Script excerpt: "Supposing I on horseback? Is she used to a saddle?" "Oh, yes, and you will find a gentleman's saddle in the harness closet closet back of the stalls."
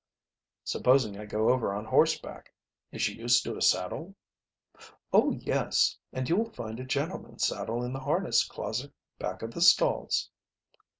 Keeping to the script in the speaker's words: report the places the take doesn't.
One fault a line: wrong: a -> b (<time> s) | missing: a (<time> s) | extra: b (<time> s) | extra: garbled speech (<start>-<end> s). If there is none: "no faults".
extra: go over (1.3 s)
missing: closet (8.9 s)